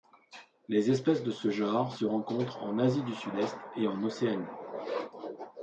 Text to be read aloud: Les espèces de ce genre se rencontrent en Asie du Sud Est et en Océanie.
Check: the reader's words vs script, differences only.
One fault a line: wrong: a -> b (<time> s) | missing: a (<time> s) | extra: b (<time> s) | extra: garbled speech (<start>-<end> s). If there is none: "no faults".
no faults